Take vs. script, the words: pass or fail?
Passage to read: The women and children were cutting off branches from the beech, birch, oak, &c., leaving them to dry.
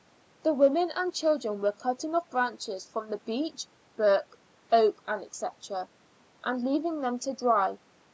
fail